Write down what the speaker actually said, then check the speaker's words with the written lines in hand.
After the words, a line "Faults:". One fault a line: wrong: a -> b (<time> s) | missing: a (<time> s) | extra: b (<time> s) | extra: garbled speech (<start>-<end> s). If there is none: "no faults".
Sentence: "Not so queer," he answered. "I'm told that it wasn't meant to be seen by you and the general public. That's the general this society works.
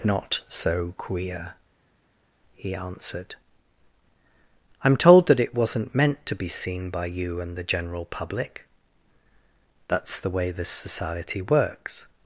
"Not so queer," he answered. "I'm told that it wasn't meant to be seen by you and the general public. That's the way this society works.
Faults:
wrong: general -> way (10.3 s)